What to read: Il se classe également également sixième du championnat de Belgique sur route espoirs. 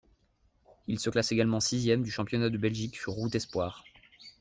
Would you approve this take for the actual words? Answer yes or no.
no